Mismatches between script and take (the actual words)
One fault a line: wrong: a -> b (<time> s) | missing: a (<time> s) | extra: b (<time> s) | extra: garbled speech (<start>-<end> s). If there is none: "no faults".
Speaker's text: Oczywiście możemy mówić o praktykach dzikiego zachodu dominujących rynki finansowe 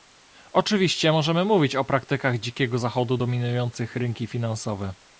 no faults